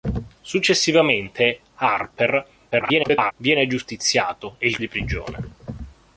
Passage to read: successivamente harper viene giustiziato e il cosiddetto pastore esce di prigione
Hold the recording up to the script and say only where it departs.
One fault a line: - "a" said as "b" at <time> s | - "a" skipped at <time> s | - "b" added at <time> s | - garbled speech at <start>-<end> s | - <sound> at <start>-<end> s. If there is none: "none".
- garbled speech at 2.7-3.3 s
- "cosiddetto pastore esce" skipped at 4.8 s